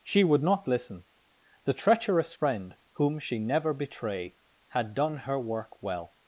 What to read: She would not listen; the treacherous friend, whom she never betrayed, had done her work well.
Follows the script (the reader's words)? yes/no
no